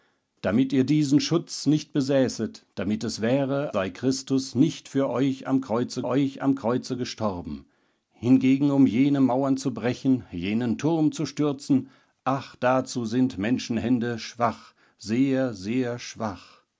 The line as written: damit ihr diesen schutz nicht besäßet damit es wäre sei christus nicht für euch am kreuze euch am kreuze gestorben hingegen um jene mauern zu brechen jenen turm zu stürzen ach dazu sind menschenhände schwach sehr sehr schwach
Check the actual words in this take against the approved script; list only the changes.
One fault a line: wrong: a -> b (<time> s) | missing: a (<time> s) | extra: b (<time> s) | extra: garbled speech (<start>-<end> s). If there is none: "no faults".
no faults